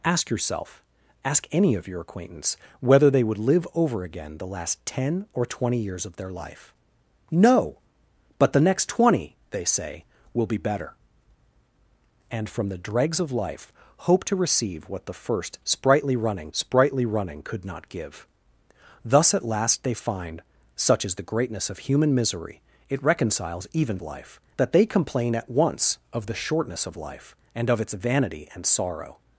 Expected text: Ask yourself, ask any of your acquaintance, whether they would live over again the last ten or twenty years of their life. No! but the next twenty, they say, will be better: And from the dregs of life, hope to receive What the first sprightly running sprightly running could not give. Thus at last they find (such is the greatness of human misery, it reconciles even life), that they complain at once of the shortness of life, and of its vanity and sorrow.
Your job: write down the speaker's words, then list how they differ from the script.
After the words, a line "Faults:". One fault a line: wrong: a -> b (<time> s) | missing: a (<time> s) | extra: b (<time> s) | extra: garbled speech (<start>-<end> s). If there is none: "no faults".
Ask yourself, ask any of your acquaintance, whether they would live over again the last ten or twenty years of their life. No! but the next twenty, they say, will be better: And from the dregs of life, hope to receive What the first sprightly running sprightly running could not give. Thus at last they find (such is the greatness of human misery, it reconciles even life), that they complain at once of the shortness of life, and of its vanity and sorrow.
Faults:
no faults